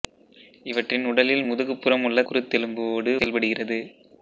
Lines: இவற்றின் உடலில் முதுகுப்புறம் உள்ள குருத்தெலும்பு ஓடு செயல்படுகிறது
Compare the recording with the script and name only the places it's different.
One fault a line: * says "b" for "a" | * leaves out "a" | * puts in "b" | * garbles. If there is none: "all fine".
all fine